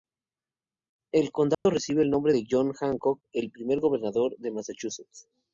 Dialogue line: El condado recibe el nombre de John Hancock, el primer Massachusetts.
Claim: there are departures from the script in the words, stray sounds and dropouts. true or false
true